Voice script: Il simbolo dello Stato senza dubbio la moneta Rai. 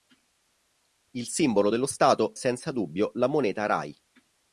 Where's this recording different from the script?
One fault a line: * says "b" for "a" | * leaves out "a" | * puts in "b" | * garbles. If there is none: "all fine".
all fine